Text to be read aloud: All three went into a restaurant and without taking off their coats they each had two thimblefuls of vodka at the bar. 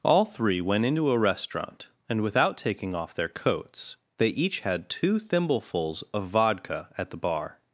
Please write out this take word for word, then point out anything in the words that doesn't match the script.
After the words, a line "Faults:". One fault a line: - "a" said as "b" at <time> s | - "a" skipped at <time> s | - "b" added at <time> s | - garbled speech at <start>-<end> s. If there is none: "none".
All three went into a restaurant and without taking off their coats they each had two thimblefuls of vodka at the bar.
Faults:
none